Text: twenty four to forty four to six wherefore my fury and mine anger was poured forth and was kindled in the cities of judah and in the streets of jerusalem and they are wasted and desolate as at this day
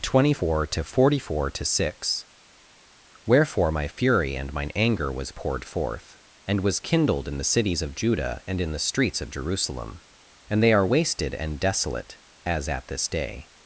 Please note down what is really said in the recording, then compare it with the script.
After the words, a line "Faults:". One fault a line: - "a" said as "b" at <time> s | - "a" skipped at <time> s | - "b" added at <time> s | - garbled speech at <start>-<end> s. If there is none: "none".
twenty four to forty four to six wherefore my fury and mine anger was poured forth and was kindled in the cities of judah and in the streets of jerusalem and they are wasted and desolate as at this day
Faults:
none